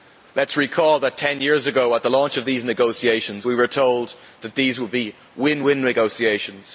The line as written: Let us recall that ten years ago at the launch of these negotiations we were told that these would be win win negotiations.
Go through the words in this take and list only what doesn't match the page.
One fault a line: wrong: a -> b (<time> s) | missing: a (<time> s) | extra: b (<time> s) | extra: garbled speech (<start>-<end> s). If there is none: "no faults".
no faults